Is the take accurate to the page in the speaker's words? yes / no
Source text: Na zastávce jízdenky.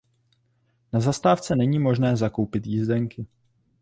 no